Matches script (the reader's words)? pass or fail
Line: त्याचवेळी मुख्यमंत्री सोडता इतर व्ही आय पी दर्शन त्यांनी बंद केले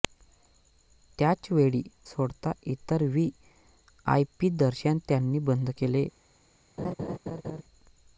fail